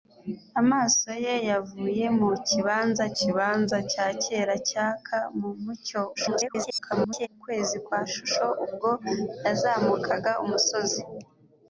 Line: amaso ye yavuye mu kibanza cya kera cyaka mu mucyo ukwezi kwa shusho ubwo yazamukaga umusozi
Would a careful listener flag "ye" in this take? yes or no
no